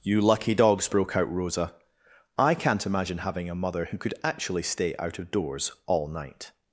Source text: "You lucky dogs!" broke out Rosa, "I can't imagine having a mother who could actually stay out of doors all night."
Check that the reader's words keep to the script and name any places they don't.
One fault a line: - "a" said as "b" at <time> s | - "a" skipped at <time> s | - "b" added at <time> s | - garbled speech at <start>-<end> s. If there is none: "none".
none